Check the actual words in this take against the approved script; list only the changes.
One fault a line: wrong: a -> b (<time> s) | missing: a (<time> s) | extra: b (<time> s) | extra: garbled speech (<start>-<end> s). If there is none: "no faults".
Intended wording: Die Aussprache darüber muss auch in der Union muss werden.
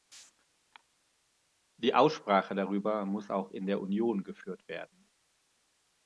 wrong: muss -> geführt (4.2 s)